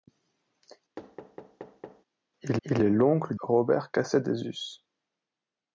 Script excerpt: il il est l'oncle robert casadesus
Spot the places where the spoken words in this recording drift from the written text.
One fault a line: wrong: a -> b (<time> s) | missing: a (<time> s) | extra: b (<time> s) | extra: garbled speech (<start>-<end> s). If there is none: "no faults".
no faults